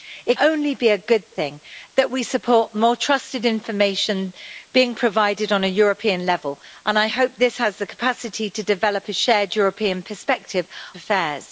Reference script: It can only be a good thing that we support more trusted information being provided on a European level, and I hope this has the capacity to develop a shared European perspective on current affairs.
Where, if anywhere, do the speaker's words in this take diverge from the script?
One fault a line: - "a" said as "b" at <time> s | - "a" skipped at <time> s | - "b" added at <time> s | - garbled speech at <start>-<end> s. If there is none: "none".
- "can" skipped at 0.4 s
- "on current" skipped at 10.7 s